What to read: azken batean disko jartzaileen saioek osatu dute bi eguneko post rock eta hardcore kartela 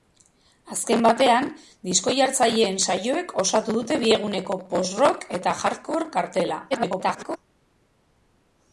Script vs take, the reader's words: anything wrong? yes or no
yes